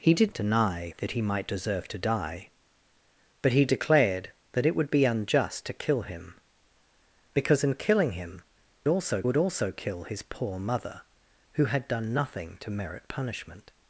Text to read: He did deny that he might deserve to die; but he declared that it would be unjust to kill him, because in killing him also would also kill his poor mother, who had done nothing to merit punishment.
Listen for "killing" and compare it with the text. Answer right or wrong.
right